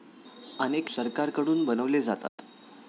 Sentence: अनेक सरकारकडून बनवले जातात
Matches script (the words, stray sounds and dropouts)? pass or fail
fail